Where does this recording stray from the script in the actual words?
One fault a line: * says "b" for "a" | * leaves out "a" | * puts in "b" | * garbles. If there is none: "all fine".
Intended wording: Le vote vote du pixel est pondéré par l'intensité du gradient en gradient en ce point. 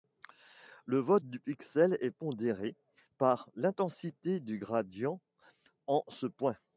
* leaves out "vote"
* leaves out "gradient en"